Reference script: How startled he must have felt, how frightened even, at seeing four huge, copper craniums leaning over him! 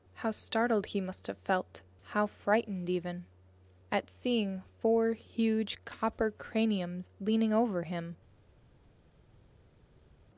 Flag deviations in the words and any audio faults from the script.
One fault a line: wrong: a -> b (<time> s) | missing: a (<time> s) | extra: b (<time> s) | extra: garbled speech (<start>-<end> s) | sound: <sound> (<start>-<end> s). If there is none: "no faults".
no faults